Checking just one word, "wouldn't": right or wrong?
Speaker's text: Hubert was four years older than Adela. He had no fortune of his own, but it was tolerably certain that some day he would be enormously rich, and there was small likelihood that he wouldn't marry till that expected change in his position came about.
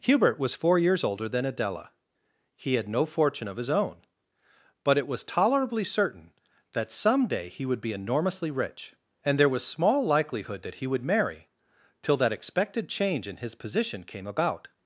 wrong